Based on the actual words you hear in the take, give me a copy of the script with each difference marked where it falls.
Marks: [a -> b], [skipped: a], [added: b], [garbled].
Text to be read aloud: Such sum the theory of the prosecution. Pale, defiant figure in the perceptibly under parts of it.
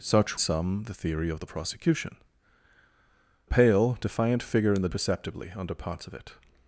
Such sum the theory of the prosecution. Pale, defiant figure in the perceptibly under parts of it.